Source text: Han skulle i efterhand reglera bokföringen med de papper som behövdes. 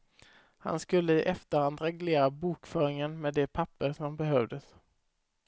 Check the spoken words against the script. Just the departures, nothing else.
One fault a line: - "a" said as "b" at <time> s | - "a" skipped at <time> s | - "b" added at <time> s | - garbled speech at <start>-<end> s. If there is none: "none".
none